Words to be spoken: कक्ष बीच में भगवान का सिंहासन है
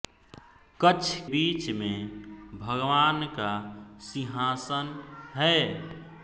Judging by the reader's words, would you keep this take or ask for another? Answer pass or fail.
pass